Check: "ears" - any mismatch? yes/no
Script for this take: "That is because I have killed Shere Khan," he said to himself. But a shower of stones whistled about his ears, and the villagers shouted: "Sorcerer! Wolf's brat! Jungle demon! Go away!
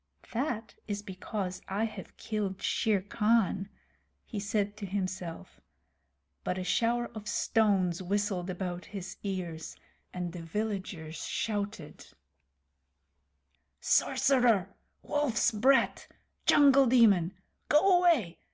no